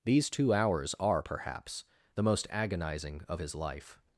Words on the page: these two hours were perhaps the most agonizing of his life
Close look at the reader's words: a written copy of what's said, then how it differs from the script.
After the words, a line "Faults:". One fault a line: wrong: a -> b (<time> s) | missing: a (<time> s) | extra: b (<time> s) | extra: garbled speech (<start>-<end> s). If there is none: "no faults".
these two hours are perhaps the most agonizing of his life
Faults:
wrong: were -> are (1.0 s)